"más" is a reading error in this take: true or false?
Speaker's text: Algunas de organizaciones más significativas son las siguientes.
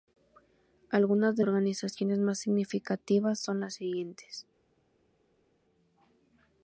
false